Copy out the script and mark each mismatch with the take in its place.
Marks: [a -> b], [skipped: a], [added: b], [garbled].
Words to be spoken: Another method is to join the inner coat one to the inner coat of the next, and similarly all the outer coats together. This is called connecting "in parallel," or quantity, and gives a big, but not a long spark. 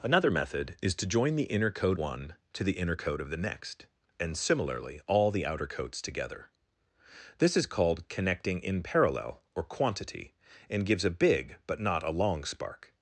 Another method is to join the inner coat one to the inner coat of the next, and similarly all the outer coats together. This is called connecting "in parallel," or quantity, and gives a big, but not a long spark.